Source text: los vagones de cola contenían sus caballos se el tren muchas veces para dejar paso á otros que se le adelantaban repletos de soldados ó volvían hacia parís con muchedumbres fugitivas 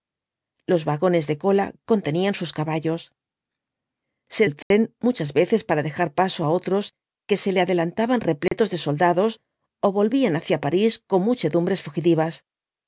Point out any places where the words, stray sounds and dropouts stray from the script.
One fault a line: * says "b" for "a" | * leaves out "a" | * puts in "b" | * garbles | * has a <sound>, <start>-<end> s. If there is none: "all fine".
* has a dropout, 4.6-4.7 s
* has a dropout, 8.5-8.5 s